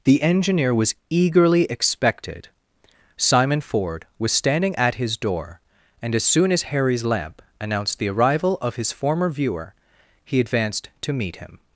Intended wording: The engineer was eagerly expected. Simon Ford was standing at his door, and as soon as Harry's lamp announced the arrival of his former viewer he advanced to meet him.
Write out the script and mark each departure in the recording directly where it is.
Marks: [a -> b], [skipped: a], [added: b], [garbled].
The engineer was eagerly expected. Simon Ford was standing at his door, and as soon as Harry's lamp announced the arrival of his former viewer he advanced to meet him.